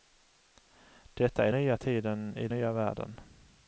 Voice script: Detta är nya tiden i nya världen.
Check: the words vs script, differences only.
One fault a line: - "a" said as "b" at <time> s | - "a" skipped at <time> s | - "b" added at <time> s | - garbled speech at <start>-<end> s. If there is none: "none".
none